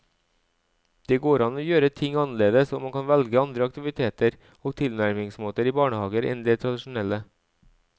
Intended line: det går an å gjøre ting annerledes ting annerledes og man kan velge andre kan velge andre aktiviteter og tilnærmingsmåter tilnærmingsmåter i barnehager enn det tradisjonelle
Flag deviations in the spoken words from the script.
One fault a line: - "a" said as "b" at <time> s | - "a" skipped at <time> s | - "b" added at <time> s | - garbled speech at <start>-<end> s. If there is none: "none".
- "ting annerledes" skipped at 2.7 s
- "kan velge andre" skipped at 3.7 s
- "tilnærmingsmåter" skipped at 5.7 s